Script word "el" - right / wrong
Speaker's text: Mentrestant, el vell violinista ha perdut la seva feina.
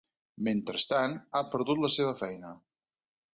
wrong